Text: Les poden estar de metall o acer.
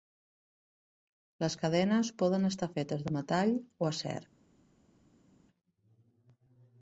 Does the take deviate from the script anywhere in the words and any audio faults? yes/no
yes